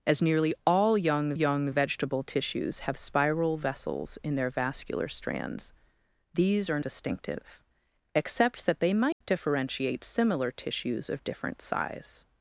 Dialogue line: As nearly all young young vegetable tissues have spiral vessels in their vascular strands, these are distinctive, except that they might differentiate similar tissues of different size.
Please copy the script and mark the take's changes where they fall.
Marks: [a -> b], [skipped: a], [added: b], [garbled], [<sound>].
As nearly all young young vegetable tissues have spiral vessels in their vascular strands, these are distinctive, except that they might [dropout] differentiate similar tissues of different size.